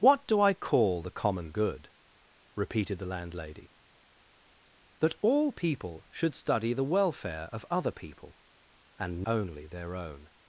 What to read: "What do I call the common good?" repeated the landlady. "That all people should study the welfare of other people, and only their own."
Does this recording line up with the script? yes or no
yes